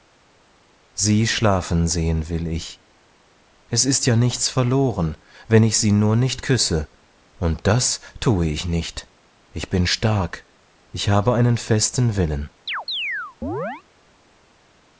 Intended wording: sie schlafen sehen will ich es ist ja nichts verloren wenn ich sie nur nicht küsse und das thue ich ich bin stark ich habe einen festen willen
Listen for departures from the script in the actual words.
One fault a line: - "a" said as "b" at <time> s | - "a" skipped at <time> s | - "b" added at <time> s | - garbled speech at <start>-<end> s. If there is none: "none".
- "nicht" added at 8.6 s